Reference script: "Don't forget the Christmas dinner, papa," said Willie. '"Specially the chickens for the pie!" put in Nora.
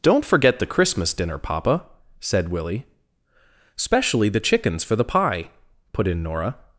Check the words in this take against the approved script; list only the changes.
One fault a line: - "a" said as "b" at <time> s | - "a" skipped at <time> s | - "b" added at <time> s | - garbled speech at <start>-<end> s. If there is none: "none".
none